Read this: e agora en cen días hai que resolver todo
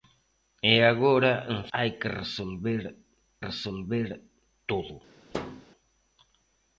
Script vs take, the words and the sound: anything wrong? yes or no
yes